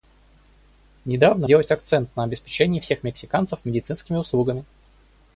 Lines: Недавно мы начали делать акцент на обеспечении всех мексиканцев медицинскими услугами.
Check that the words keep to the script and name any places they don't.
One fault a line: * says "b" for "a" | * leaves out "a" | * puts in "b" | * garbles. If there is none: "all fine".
* leaves out "мы начали"